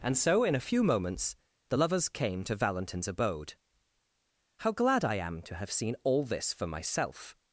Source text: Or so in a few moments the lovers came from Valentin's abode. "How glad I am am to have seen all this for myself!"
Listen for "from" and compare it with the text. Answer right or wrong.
wrong